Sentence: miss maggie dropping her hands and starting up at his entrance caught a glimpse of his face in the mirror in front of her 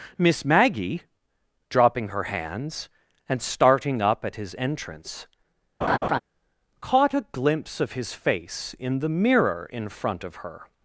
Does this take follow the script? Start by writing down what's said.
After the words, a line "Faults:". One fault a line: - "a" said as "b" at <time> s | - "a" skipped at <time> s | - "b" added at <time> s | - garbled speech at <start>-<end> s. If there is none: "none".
miss maggie dropping her hands and starting up at his entrance caught a glimpse of his face in the mirror in front of her
Faults:
none